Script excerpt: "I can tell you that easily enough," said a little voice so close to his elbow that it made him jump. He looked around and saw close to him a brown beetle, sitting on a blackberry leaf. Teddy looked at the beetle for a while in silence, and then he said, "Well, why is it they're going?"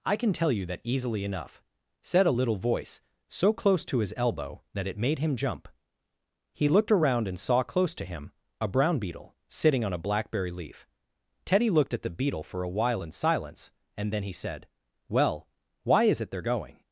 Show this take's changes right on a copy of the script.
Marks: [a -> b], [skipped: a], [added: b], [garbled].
"I can tell you that easily enough," said a little voice so close to his elbow that it made him jump. He looked around and saw close to him a brown beetle, sitting on a blackberry leaf. Teddy looked at the beetle for a while in silence, and then he said, "Well, why is it they're going?"